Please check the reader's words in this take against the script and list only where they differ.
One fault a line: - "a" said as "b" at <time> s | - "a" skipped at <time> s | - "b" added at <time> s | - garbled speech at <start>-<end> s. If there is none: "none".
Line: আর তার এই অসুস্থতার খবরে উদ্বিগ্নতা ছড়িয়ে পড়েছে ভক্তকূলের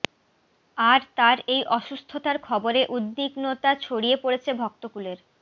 none